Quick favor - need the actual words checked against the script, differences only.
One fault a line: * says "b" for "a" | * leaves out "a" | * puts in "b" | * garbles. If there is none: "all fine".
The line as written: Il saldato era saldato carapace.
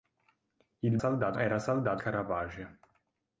all fine